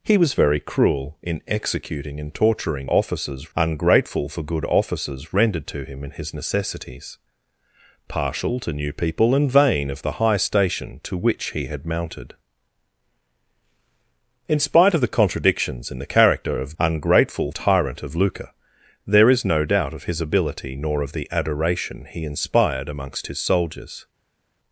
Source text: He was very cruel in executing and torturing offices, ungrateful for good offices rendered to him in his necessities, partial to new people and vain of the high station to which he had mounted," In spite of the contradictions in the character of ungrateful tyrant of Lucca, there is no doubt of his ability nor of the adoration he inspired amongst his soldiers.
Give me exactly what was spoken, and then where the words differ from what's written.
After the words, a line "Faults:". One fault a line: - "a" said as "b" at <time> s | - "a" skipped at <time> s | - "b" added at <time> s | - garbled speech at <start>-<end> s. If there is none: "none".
He was very cruel in executing and torturing offices, ungrateful for good offices rendered to him in his necessities, partial to new people and vain of the high station to which he had mounted," In spite of the contradictions in the character of ungrateful tyrant of Lucca, there is no doubt of his ability nor of the adoration he inspired amongst his soldiers.
Faults:
none